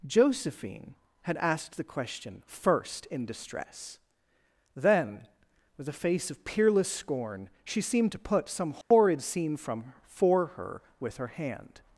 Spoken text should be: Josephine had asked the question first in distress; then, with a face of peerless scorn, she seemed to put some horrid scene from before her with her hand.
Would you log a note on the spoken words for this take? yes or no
yes